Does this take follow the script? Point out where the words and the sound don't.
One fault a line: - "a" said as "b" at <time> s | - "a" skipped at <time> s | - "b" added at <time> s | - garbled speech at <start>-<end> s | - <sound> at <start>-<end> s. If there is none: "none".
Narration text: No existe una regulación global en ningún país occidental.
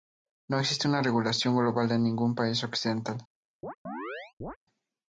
- chirp at 3.6-4.6 s